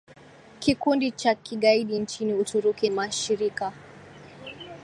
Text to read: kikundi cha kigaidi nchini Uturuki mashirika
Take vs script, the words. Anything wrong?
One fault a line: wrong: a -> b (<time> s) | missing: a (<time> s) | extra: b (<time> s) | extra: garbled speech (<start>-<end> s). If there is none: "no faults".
no faults